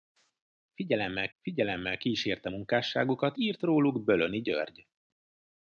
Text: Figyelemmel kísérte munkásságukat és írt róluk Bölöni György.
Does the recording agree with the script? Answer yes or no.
no